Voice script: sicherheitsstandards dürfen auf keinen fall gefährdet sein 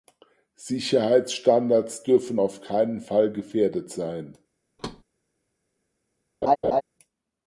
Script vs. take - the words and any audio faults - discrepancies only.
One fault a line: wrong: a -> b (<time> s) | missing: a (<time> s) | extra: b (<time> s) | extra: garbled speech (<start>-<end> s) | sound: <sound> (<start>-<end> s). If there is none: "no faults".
sound: thud (4.8-5.0 s)
sound: laugh (6.4-6.8 s)